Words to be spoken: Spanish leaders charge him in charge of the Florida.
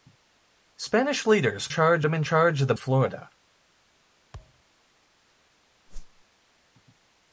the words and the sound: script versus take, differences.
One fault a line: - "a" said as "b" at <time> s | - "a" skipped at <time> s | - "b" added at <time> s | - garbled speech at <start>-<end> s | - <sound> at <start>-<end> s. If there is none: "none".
- thud at 4.3-4.6 s
- whoosh at 5.9-6.2 s